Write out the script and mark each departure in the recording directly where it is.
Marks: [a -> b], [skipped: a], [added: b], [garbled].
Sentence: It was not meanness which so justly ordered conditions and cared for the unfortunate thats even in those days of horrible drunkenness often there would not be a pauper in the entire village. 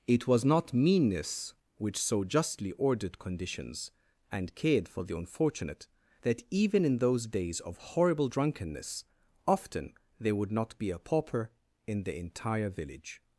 It was not meanness which so justly ordered conditions and cared for the unfortunate [thats -> that] even in those days of horrible drunkenness often there would not be a pauper in the entire village.